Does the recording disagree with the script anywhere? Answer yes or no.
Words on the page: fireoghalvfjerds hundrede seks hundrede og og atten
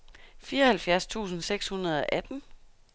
yes